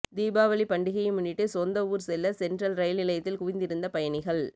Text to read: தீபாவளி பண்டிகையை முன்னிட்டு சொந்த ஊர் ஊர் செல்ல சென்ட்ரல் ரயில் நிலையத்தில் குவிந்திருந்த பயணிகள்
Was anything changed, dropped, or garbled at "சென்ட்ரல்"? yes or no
no